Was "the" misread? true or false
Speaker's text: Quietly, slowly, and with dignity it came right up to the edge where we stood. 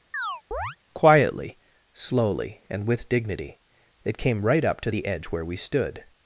false